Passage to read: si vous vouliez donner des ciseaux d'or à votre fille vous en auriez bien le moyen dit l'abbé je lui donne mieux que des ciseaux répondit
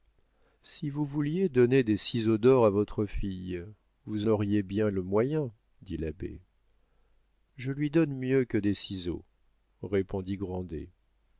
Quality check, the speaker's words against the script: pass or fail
fail